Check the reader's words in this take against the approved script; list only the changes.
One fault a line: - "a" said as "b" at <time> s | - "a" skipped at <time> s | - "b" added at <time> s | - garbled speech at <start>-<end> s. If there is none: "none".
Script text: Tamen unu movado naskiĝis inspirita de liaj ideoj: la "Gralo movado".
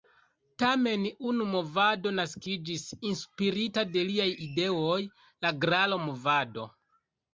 none